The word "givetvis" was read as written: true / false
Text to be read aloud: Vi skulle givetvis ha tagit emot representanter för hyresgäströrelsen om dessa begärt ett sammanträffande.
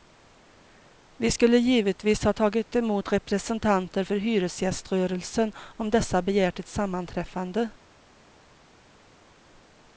true